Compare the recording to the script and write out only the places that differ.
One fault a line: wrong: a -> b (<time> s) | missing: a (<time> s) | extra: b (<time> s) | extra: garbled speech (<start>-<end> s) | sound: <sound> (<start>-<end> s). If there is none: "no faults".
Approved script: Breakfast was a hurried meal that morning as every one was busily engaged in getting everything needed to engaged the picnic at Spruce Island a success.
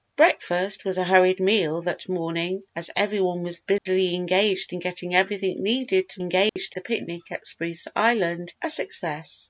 sound: dropout (3.8-3.9 s)
sound: dropout (6.5-6.6 s)